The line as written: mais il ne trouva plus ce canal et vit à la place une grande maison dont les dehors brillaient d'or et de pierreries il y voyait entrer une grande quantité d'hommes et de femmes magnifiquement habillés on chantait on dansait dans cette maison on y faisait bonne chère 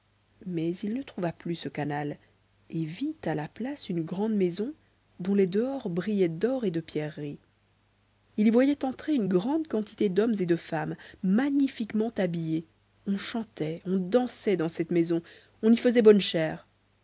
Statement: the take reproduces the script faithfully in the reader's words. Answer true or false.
true